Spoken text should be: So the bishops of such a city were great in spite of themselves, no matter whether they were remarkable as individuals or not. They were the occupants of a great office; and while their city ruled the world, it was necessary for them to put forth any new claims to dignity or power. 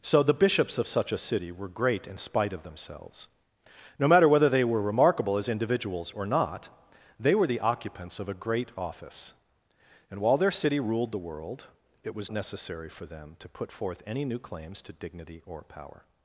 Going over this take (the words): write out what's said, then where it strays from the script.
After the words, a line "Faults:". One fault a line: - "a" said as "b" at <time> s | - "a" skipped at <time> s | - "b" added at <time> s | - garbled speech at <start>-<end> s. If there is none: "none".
So the bishops of such a city were great in spite of themselves, no matter whether they were remarkable as individuals or not. They were the occupants of a great office; and while their city ruled the world, it was necessary for them to put forth any new claims to dignity or power.
Faults:
none